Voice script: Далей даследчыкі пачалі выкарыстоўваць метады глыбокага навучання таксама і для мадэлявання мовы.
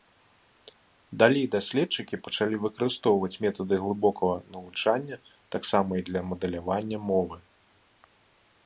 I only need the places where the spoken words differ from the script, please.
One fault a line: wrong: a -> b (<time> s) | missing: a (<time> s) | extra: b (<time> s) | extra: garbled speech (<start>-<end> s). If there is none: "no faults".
no faults